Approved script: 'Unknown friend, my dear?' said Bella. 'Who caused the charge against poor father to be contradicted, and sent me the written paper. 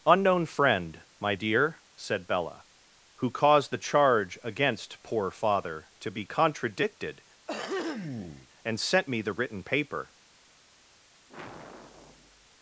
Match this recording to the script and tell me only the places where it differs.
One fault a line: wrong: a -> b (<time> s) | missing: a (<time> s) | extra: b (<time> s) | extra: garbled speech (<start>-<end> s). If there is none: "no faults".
no faults